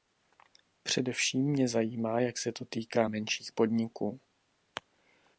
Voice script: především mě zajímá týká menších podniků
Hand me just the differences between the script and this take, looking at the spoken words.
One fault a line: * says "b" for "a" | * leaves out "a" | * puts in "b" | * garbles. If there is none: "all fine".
* puts in "jak se to"